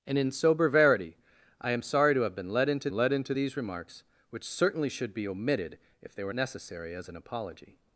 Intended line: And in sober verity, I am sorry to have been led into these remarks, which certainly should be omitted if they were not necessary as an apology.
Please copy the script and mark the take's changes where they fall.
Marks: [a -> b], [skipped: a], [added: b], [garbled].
And in sober verity, I am sorry to have been led into [added: led into] these remarks, which certainly should be omitted if they were [skipped: not] necessary as an apology.